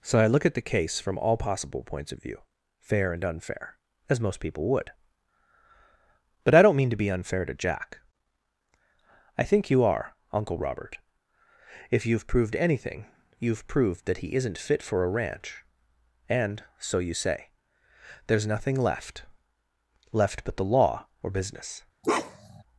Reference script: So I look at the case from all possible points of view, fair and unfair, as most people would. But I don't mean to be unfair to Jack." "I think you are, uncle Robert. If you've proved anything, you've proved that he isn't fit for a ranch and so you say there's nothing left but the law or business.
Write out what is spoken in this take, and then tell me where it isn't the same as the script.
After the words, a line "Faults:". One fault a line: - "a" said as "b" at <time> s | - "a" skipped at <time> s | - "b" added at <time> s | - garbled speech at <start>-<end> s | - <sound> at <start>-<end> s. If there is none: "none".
So I look at the case from all possible points of view, fair and unfair, as most people would. But I don't mean to be unfair to Jack." "I think you are, uncle Robert. If you've proved anything, you've proved that he isn't fit for a ranch and so you say there's nothing left left but the law or business.
Faults:
- "left" added at 20.1 s
- bark at 22.0-22.6 s